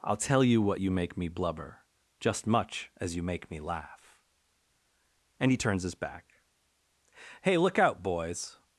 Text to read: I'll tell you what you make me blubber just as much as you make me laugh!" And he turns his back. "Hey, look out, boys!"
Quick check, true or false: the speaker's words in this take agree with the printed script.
false